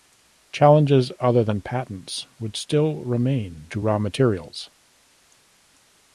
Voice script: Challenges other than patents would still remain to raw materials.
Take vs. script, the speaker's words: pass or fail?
pass